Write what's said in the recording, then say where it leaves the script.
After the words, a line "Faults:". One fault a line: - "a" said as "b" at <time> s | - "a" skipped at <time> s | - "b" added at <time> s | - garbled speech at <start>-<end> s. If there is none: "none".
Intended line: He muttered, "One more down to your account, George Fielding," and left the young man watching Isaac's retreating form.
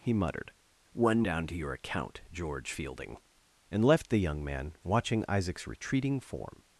He muttered, "One down to your account, George Fielding," and left the young man watching Isaac's retreating form.
Faults:
- "more" skipped at 1.2 s